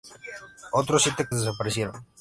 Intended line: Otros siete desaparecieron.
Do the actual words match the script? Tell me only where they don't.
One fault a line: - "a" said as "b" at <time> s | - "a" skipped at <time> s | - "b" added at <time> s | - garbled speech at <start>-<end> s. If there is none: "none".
none